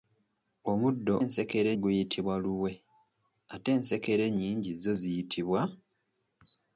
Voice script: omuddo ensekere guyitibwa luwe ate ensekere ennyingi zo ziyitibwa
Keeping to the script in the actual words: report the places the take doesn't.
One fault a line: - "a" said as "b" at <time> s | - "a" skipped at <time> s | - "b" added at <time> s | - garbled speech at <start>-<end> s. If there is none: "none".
none